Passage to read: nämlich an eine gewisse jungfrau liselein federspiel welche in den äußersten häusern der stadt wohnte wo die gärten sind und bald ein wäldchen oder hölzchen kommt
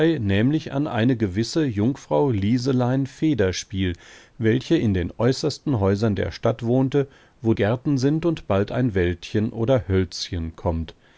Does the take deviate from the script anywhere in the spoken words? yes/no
yes